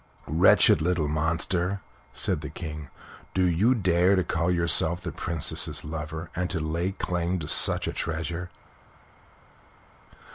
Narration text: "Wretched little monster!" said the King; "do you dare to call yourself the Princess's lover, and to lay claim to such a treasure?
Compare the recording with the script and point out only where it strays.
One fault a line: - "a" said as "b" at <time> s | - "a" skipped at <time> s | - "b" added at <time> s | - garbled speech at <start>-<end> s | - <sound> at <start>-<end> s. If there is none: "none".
none